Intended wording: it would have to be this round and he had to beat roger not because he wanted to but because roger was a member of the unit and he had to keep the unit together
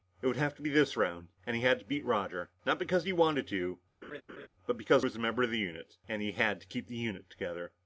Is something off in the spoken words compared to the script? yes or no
yes